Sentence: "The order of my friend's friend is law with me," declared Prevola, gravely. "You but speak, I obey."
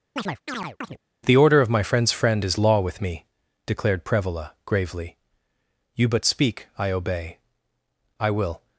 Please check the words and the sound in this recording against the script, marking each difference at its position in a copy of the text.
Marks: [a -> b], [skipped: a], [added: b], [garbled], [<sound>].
[chirp] "The order of my friend's friend is law with me," declared Prevola, gravely. "You but speak, I obey." [added: I will]